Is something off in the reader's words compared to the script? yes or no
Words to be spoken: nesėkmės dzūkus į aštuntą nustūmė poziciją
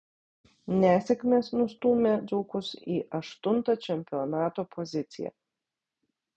yes